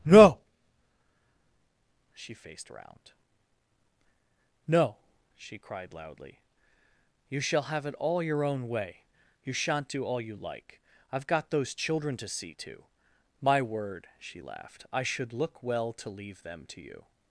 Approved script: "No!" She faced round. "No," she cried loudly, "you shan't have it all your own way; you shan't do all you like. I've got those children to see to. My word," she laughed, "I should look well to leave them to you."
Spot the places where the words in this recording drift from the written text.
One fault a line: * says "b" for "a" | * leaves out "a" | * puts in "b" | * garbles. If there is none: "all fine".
* says "shall" for "shan't"